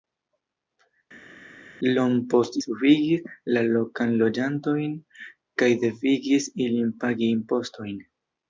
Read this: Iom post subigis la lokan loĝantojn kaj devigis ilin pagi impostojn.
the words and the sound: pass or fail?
pass